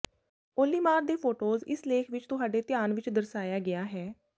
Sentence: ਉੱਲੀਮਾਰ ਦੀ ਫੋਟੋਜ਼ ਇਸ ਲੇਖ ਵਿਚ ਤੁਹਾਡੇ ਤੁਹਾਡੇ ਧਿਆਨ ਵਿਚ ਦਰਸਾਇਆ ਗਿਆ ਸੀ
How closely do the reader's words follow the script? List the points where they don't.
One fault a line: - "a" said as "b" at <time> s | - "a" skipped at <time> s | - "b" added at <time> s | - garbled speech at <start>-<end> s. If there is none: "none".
- "ਦੀ" said as "ਦੇ" at 1.0 s
- "ਤੁਹਾਡੇ" skipped at 2.6 s
- "ਸੀ" said as "ਹੈ" at 3.9 s